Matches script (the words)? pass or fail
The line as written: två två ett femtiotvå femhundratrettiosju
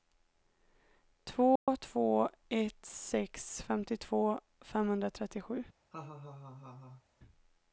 fail